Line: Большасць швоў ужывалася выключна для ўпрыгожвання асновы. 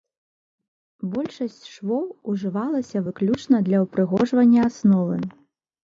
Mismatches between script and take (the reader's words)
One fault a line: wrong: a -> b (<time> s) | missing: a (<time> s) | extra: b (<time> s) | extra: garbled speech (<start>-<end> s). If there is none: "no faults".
no faults